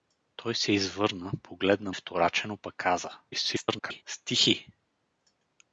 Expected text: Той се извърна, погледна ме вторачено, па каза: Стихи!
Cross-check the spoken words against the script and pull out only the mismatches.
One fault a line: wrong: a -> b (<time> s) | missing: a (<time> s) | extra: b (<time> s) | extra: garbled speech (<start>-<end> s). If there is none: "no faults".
missing: ме (1.9 s)
extra: garbled speech (3.3-4.0 s)